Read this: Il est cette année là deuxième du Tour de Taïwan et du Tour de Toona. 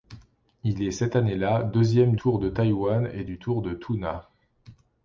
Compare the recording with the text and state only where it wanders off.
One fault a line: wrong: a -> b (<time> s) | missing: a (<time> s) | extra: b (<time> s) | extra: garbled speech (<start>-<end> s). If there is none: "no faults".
missing: du (2.1 s)